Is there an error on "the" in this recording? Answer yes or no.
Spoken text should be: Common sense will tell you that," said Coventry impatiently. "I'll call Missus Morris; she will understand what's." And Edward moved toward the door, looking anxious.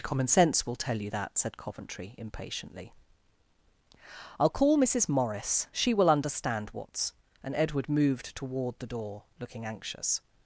no